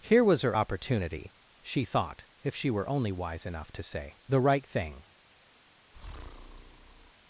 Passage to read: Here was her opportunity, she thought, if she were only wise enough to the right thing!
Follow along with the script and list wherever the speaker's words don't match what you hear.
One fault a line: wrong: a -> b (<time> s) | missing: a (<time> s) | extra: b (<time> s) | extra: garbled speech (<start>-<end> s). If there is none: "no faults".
extra: say (3.8 s)